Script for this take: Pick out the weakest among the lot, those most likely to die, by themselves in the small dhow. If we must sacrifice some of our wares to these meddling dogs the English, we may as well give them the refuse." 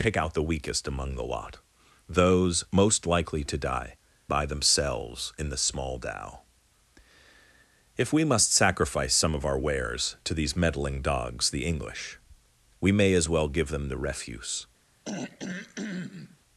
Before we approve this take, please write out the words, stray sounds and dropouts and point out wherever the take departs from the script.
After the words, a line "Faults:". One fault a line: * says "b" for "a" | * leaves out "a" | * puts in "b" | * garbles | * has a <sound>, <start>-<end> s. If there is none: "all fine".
Pick out the weakest among the lot, those most likely to die, by themselves in the small dhow. If we must sacrifice some of our wares to these meddling dogs the English, we may as well give them the refuse."
Faults:
* has a throat clearing, 15.0-16.4 s